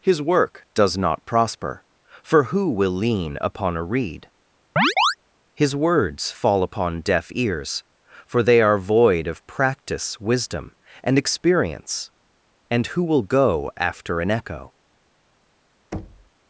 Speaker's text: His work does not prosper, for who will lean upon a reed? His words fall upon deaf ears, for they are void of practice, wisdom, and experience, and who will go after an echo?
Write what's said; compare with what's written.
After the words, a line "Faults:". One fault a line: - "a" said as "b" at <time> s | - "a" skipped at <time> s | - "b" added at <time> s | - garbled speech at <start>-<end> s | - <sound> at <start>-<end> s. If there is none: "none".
His work does not prosper, for who will lean upon a reed? His words fall upon deaf ears, for they are void of practice, wisdom, and experience, and who will go after an echo?
Faults:
- chirp at 4.8-5.2 s
- thud at 15.9-16.3 s